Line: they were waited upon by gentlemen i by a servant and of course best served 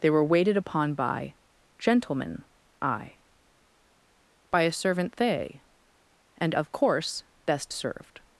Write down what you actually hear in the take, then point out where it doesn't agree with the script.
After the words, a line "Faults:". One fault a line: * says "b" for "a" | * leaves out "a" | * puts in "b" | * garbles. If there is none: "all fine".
they were waited upon by gentlemen i by a servant they and of course best served
Faults:
* puts in "they"